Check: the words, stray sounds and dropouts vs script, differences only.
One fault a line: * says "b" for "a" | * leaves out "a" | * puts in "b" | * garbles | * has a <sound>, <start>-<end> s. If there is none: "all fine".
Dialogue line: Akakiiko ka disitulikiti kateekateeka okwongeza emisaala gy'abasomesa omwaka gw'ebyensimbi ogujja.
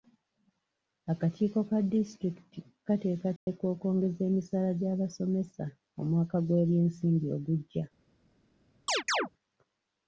* has a dropout, 3.4-3.5 s
* has a chirp, 8.9-9.3 s